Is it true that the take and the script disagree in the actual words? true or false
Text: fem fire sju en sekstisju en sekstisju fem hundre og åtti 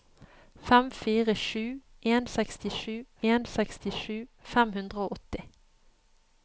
false